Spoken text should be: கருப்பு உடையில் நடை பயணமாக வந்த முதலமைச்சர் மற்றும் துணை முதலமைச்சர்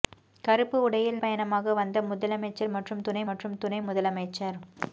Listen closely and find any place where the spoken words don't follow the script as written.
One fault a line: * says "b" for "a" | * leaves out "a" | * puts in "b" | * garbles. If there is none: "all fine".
* leaves out "நடை"
* puts in "மற்றும் துணை"